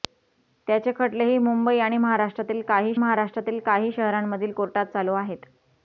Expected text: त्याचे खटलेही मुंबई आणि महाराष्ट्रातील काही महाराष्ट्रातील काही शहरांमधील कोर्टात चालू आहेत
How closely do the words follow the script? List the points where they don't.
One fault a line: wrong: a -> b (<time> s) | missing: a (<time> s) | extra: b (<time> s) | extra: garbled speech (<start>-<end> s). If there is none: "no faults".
no faults